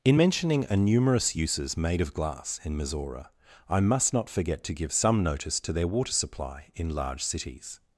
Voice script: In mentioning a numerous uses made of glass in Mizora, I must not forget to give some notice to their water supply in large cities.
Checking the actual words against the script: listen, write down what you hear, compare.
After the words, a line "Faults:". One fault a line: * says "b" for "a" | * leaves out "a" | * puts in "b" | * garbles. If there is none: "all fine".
In mentioning a numerous uses made of glass in Mizora, I must not forget to give some notice to their water supply in large cities.
Faults:
all fine